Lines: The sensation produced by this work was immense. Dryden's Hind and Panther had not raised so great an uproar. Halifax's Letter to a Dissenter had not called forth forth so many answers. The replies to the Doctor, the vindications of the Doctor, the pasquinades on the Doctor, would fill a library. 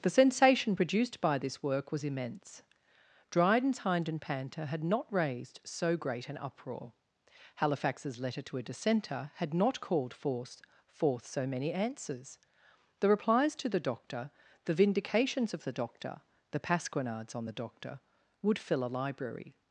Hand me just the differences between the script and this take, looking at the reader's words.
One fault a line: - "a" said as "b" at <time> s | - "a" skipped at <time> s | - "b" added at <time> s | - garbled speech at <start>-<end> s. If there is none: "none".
none